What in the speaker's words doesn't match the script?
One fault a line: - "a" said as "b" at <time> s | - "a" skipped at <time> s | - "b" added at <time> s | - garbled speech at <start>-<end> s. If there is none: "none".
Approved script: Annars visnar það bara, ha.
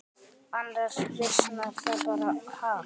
none